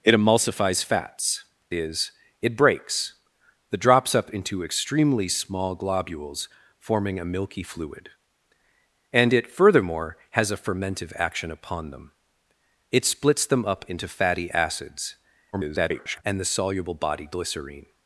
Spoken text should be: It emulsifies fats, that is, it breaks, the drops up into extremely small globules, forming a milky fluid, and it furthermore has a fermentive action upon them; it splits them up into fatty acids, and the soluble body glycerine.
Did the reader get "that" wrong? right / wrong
wrong